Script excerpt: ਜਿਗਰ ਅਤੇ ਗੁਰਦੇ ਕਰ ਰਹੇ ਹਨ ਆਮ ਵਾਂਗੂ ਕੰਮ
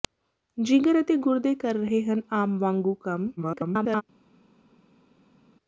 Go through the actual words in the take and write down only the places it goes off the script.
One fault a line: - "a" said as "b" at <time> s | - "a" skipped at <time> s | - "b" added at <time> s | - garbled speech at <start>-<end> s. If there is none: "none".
- garbled speech at 3.4-4.0 s